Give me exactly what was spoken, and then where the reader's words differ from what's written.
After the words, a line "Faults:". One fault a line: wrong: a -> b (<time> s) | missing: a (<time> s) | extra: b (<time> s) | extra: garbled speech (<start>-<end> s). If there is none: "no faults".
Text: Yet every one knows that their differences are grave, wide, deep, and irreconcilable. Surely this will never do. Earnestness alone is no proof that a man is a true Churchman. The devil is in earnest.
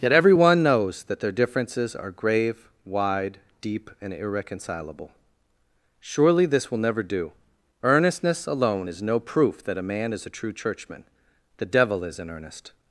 Yet every one knows that their differences are grave, wide, deep, and irreconcilable. Surely this will never do. Earnestness alone is no proof that a man is a true Churchman. The devil is in earnest.
Faults:
no faults